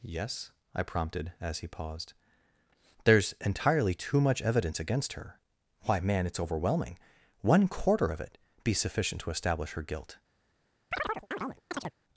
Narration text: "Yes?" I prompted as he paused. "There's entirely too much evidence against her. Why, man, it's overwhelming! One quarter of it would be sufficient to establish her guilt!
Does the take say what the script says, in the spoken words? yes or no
no